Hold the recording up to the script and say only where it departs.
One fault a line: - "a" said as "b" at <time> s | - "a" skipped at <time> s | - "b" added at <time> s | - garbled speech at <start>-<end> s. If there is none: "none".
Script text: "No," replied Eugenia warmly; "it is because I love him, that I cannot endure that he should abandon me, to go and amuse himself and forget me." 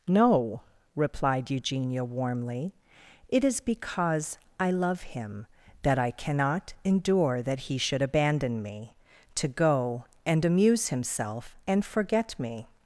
none